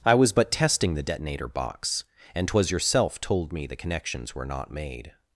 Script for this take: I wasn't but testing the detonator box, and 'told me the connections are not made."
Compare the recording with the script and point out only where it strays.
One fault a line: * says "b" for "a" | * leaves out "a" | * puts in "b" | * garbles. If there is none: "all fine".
* says "was" for "wasn't"
* puts in "twas yourself"
* says "were" for "are"